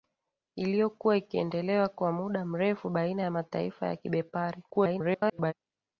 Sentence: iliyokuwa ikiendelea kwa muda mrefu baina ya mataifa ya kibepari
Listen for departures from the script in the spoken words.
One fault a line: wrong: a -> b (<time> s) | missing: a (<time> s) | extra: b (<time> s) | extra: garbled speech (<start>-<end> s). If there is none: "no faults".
extra: garbled speech (4.7-5.5 s)